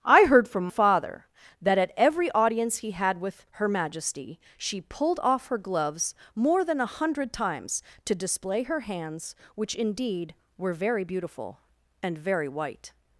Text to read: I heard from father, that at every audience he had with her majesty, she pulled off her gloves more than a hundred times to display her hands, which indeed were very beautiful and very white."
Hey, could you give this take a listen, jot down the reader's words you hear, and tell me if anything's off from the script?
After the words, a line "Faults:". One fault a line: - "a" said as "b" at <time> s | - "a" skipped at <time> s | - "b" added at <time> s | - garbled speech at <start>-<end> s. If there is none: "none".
I heard from father, that at every audience he had with her majesty, she pulled off her gloves more than a hundred times to display her hands, which indeed were very beautiful and very white."
Faults:
none